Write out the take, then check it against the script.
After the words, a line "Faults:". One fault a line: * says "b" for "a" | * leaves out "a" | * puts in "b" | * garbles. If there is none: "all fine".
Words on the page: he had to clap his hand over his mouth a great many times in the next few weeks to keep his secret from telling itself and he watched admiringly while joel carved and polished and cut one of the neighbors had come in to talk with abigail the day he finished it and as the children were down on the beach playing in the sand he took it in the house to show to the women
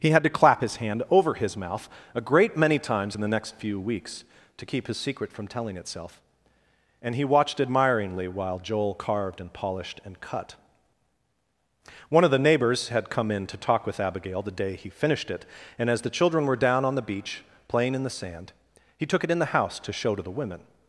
he had to clap his hand over his mouth a great many times in the next few weeks to keep his secret from telling itself and he watched admiringly while joel carved and polished and cut one of the neighbors had come in to talk with abigail the day he finished it and as the children were down on the beach playing in the sand he took it in the house to show to the women
Faults:
all fine